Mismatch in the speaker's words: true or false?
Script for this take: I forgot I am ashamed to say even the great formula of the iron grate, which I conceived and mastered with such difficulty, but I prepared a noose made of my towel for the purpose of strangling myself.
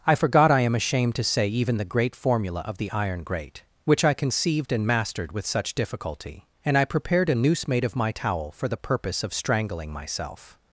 true